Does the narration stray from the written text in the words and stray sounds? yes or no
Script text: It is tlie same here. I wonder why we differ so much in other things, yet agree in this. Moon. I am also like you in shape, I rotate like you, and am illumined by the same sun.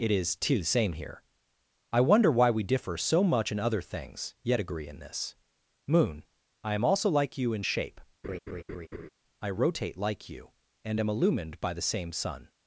yes